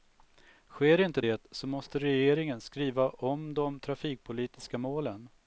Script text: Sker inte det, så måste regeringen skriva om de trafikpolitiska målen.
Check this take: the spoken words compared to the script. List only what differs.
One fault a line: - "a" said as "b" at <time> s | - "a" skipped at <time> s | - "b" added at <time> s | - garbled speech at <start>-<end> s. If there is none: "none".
none